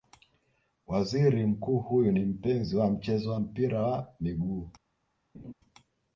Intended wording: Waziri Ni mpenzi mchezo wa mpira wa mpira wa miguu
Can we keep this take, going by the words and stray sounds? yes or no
no